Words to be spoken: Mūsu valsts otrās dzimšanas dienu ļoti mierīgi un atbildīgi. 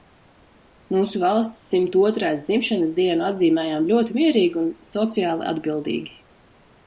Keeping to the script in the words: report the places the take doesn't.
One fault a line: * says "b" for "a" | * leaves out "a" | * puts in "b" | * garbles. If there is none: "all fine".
* puts in "simt"
* puts in "atzīmējām"
* puts in "sociāli"